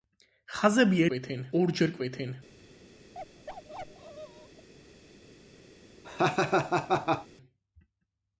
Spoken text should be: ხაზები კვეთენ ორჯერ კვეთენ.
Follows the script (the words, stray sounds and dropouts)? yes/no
no